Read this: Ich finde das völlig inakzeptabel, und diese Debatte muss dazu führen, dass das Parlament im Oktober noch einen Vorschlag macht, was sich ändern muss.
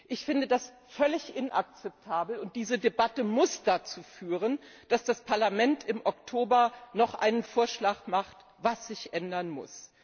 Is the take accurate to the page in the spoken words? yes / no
yes